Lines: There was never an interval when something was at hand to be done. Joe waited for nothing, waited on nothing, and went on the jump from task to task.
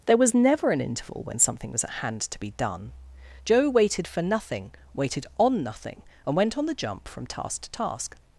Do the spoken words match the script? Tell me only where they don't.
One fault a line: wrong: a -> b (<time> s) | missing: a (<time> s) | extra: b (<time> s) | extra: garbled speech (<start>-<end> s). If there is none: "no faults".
no faults